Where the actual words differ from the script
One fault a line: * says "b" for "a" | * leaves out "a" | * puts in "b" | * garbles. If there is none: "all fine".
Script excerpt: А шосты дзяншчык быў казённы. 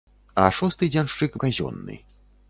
* leaves out "быў"